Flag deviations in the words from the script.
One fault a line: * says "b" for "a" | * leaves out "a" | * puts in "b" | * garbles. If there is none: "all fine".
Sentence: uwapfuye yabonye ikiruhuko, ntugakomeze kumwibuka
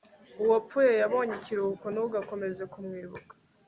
all fine